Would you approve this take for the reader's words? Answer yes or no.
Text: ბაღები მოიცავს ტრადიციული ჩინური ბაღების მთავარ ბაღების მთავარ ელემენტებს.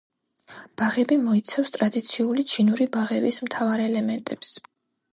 no